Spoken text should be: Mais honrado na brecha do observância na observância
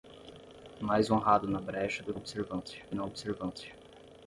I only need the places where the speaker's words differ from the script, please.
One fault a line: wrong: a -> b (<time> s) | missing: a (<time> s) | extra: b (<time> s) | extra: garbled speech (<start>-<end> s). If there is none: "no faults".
no faults